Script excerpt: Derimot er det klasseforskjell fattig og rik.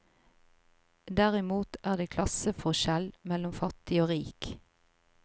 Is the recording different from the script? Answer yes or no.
yes